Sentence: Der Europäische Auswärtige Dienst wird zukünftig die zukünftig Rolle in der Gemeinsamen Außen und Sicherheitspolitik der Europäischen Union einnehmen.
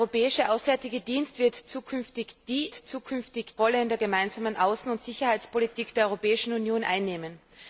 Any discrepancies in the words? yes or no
no